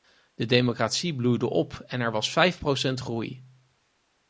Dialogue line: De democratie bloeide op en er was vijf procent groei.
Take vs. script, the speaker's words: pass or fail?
pass